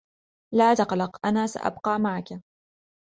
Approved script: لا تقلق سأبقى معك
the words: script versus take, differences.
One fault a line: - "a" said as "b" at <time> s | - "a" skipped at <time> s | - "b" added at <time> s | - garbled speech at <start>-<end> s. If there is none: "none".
- "أنا" added at 1.3 s